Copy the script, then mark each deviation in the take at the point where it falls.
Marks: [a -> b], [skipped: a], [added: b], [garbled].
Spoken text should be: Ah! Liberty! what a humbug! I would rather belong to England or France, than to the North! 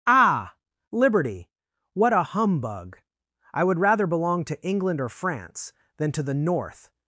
Ah! Liberty! what a humbug! I would rather belong to England or France, than to the North!